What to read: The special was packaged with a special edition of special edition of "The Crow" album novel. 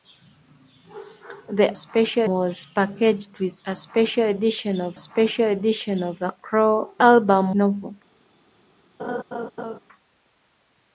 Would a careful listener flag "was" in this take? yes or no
no